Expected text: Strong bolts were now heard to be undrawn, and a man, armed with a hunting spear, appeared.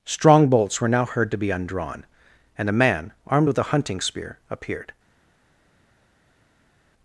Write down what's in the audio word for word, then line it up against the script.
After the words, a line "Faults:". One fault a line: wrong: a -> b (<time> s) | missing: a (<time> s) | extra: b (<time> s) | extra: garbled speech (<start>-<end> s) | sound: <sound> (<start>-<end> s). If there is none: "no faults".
Strong bolts were now heard to be undrawn, and a man, armed with a hunting spear, appeared.
Faults:
no faults